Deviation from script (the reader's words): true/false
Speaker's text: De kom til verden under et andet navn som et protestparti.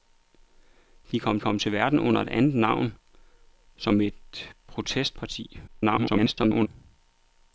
true